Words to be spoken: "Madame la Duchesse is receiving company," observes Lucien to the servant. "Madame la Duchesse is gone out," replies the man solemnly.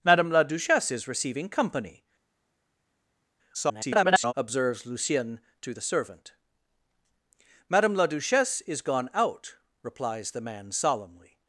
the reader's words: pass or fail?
fail